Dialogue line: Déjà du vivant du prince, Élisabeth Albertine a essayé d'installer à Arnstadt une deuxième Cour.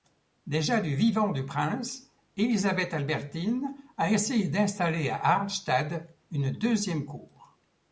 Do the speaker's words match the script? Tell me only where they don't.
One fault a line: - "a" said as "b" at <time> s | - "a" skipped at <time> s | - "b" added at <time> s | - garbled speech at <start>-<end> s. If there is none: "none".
none